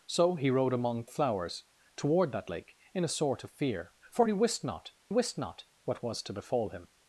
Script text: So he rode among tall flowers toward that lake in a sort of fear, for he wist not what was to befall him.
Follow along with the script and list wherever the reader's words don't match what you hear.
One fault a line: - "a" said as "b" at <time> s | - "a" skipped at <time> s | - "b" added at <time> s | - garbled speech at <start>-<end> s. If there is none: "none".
- "tall" skipped at 1.1 s
- "wist not" added at 5.1 s